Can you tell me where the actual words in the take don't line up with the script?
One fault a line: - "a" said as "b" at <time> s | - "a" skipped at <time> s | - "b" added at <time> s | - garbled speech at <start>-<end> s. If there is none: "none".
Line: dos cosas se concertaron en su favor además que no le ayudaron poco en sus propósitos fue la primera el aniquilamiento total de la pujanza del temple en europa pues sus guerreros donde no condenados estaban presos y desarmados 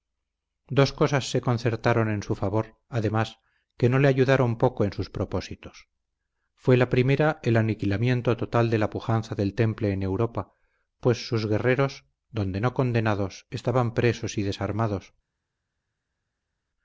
none